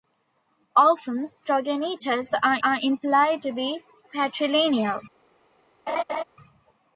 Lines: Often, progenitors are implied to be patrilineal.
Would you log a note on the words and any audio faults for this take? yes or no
yes